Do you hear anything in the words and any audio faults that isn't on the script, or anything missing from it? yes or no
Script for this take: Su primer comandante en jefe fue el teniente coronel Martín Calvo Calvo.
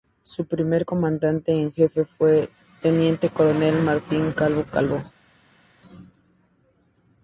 no